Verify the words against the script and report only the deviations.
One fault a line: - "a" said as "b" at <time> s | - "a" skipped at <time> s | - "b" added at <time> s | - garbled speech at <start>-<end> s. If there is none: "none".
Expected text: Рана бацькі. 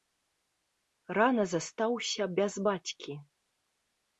- "застаўся без" added at 1.5 s